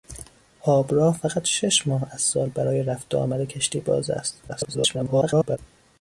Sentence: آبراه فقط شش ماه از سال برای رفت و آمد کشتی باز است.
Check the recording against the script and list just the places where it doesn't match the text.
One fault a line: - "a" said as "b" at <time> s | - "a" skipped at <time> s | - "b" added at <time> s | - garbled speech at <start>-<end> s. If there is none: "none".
- garbled speech at 4.5-5.6 s